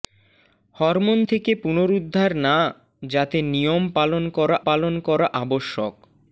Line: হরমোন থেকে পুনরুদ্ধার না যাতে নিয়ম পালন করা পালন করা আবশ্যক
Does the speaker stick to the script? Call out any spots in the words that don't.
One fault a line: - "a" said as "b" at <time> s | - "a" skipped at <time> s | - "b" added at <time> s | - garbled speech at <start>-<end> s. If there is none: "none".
none